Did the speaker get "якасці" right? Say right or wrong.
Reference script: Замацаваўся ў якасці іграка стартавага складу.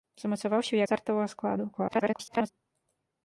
wrong